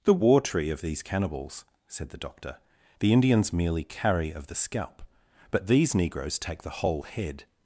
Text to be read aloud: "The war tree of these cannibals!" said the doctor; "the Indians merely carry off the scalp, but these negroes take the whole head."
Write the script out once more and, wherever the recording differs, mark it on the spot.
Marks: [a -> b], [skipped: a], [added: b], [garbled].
"The war tree of these cannibals!" said the doctor; "the Indians merely carry [off -> of] the scalp, but these negroes take the whole head."